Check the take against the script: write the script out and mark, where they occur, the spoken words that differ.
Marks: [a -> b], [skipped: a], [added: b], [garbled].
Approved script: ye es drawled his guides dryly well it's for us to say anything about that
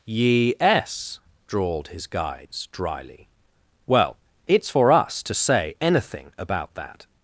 ye es drawled his guides dryly well it's for us to say anything about that